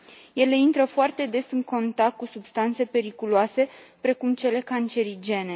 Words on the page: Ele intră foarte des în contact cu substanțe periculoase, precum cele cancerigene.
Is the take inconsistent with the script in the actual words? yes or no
no